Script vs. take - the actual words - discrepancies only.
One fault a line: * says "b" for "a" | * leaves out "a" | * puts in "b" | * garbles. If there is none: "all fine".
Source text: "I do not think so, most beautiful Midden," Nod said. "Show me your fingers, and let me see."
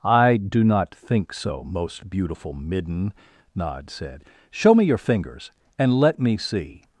all fine